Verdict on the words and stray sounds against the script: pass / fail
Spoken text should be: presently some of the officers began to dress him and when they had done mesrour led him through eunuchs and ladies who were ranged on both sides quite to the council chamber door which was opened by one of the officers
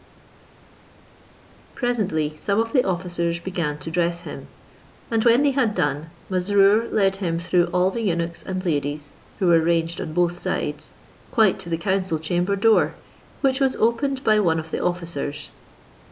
fail